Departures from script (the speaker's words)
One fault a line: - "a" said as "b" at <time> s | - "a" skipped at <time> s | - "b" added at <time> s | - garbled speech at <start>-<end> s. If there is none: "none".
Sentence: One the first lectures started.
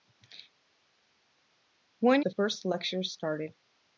none